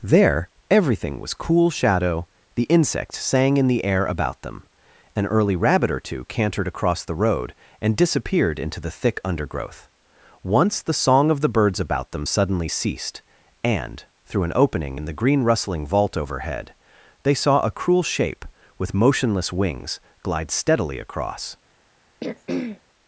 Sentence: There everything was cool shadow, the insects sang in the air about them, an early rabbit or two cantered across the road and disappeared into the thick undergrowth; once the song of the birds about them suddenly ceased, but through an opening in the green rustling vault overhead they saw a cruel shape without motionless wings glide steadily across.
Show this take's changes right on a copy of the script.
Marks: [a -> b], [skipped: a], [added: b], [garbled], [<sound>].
There everything was cool shadow, the insects sang in the air about them, an early rabbit or two cantered across the road and disappeared into the thick undergrowth; once the song of the birds about them suddenly ceased, [but -> and] through an opening in the green rustling vault overhead they saw a cruel shape [without -> with] motionless wings glide steadily across. [throat clearing]